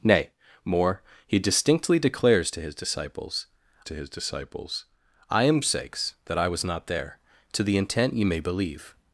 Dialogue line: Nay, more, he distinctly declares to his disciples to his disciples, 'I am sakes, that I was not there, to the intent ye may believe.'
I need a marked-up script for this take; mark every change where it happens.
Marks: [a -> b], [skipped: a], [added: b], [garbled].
Nay, more, he distinctly declares to his disciples to his disciples, 'I am sakes, that I was not there, to the intent ye may believe.'